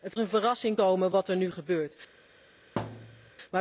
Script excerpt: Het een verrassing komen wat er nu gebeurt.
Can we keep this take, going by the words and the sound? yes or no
no